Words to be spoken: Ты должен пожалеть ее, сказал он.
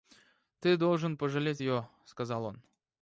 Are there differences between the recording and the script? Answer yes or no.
no